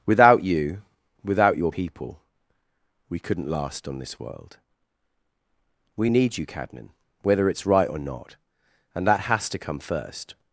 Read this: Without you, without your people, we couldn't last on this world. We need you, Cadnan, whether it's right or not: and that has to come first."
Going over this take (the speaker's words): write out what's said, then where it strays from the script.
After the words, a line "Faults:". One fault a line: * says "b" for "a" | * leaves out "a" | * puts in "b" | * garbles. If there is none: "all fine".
Without you, without your people, we couldn't last on this world. We need you, Cadnan, whether it's right or not: and that has to come first."
Faults:
all fine